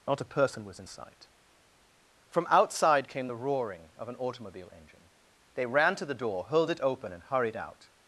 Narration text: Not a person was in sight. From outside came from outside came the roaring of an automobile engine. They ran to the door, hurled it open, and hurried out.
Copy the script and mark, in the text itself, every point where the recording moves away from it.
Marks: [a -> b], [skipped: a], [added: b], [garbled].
Not a person was in sight. From outside came [skipped: from outside came] the roaring of an automobile engine. They ran to the door, hurled it open, and hurried out.